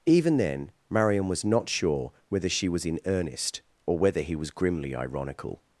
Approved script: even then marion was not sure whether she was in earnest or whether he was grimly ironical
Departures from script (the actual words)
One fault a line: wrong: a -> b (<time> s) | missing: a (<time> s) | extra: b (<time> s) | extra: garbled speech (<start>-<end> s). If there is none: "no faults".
no faults